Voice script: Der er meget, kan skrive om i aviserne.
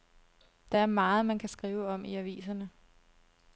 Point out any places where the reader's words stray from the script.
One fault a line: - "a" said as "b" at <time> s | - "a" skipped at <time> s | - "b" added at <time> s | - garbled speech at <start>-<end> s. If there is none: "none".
- "man" added at 1.3 s